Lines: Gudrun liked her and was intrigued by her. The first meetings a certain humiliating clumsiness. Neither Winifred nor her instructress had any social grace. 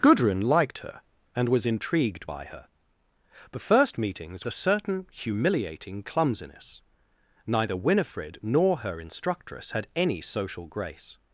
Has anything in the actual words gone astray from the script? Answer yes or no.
no